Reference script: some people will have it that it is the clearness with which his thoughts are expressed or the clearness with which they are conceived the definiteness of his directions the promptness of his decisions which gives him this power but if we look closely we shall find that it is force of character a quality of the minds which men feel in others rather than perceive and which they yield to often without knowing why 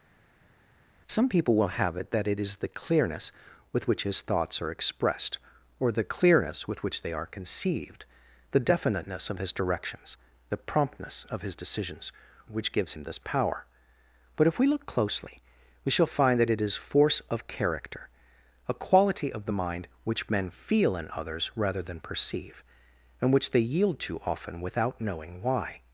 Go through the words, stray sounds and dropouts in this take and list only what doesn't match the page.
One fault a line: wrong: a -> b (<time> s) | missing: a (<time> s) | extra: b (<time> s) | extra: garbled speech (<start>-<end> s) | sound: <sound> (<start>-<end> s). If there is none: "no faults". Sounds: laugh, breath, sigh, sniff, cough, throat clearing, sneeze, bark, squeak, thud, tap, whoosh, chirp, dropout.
wrong: minds -> mind (19.5 s)